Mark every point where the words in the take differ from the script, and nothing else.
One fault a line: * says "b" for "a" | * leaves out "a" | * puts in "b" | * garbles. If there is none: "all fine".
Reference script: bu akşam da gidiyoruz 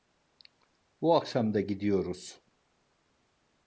all fine